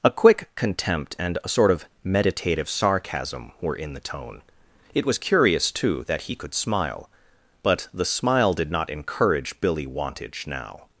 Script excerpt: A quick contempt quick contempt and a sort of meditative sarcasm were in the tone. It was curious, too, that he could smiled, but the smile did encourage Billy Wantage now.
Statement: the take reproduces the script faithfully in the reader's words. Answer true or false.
false